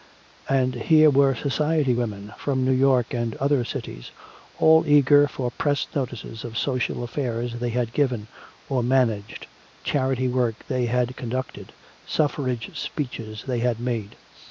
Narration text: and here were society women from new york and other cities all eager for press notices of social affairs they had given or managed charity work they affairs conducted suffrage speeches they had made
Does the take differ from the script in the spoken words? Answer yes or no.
yes